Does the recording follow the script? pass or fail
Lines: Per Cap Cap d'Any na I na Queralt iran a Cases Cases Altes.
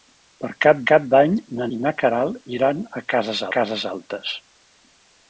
pass